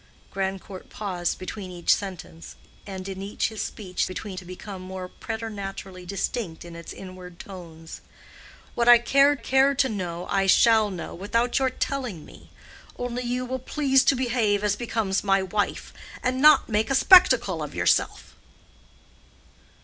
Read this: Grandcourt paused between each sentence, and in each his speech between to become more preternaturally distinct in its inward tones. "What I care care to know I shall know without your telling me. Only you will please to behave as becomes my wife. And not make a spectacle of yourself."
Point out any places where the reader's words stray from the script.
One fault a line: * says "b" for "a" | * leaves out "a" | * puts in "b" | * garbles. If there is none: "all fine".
all fine